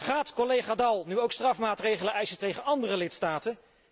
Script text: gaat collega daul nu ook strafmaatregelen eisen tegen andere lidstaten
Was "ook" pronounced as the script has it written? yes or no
yes